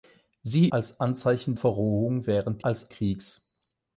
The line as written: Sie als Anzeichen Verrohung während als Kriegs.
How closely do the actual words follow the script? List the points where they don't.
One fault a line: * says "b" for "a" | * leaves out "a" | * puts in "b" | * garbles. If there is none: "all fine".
all fine